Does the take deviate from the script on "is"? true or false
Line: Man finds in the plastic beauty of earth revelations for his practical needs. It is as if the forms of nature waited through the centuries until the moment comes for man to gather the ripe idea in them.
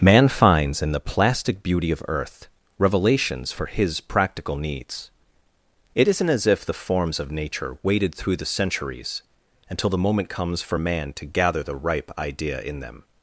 true